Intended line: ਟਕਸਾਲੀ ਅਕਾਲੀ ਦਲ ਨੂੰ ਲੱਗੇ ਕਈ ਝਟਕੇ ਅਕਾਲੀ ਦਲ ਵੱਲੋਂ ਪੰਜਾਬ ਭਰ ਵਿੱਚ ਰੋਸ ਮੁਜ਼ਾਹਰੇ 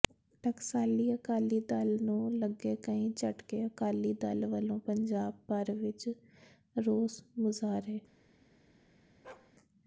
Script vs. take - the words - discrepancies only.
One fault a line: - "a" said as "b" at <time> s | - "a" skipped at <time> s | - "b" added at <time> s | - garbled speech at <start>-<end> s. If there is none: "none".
none